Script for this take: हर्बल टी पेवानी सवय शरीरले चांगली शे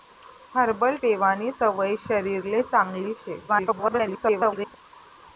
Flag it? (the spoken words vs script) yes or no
yes